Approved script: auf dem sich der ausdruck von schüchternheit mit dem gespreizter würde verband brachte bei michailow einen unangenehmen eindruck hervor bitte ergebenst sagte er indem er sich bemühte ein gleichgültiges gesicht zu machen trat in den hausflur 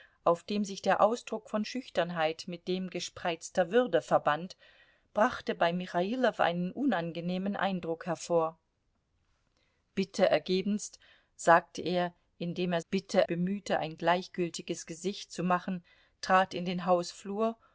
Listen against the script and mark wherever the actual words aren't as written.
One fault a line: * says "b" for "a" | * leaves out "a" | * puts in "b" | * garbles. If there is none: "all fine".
* says "bitte" for "sich"